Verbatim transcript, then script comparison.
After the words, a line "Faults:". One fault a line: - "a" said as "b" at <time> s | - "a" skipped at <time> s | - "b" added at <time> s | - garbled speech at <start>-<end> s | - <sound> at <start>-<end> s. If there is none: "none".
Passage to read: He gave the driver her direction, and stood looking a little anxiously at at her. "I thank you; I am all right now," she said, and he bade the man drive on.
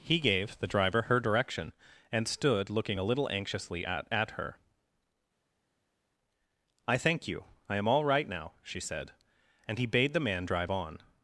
He gave the driver her direction, and stood looking a little anxiously at at her. "I thank you; I am all right now," she said, and he bade the man drive on.
Faults:
none